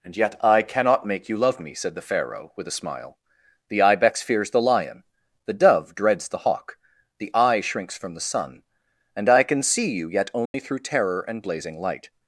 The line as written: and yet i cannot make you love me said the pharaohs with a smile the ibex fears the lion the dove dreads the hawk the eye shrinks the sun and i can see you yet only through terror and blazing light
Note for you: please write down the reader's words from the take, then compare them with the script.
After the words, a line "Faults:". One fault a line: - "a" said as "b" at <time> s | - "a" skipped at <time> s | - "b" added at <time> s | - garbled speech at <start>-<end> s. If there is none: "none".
and yet i cannot make you love me said the pharaoh with a smile the ibex fears the lion the dove dreads the hawk the eye shrinks from the sun and i can see you yet only through terror and blazing light
Faults:
- "pharaohs" said as "pharaoh" at 2.0 s
- "from" added at 8.0 s